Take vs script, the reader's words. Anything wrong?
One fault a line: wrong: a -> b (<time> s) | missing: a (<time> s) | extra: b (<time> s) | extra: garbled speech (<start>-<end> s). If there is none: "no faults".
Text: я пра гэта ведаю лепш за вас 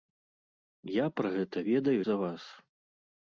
missing: лепш (2.0 s)